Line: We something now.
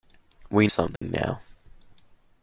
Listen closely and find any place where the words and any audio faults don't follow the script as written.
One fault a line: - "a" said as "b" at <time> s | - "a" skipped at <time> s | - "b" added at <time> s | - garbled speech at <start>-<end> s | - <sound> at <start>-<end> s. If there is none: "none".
- dropout at 1.0-1.0 s